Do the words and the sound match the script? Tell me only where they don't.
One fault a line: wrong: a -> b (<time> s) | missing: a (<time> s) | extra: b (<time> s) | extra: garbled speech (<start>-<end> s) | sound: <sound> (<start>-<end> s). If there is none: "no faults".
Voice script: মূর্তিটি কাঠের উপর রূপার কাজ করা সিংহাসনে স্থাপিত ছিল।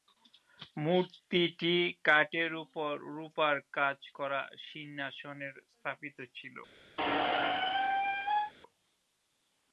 sound: squeak (7.0-8.5 s)